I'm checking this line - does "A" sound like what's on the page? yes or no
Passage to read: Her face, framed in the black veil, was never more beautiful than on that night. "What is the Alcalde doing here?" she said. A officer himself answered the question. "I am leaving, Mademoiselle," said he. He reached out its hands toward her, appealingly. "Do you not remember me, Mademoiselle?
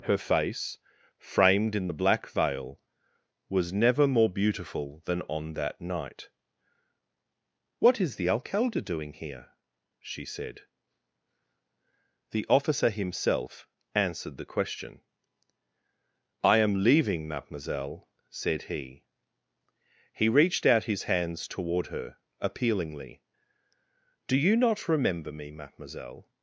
no